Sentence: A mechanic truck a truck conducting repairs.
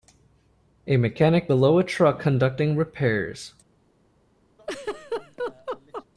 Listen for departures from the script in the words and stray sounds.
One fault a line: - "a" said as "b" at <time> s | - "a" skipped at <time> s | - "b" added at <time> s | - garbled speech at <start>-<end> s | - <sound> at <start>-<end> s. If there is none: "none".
- "truck" said as "below" at 1.5 s
- laugh at 4.6-6.1 s